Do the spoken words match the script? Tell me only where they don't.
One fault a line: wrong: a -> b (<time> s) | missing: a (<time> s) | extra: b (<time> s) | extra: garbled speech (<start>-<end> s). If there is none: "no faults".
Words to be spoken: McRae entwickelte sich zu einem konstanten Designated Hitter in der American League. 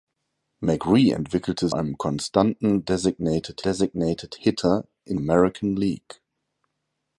missing: sich zu (1.7 s)
extra: Designated (3.6 s)
missing: der (5.2 s)